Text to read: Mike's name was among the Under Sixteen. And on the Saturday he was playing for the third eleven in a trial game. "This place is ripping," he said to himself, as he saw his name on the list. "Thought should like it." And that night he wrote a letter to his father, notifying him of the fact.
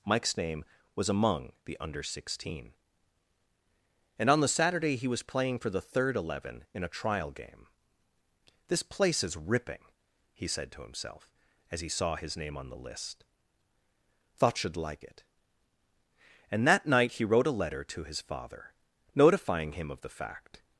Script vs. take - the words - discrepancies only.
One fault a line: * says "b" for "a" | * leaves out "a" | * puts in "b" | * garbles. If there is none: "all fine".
all fine